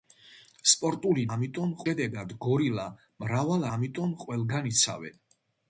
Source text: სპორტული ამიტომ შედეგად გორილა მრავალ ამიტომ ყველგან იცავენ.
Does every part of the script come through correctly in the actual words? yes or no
yes